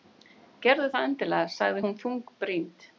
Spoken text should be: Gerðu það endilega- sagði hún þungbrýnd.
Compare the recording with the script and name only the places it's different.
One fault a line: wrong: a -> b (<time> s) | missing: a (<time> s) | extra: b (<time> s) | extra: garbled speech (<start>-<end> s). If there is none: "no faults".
no faults